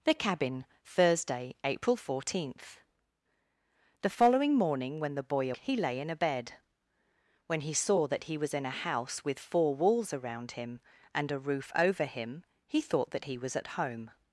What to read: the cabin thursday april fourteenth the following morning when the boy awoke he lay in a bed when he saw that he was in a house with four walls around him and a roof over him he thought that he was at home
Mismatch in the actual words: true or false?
true